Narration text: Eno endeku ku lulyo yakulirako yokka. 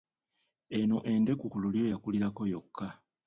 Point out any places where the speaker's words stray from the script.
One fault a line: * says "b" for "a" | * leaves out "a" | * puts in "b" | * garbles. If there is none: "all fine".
all fine